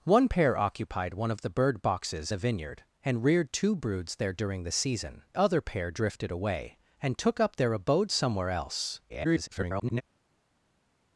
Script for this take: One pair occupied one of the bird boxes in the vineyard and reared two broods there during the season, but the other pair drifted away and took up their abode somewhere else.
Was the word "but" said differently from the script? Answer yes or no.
yes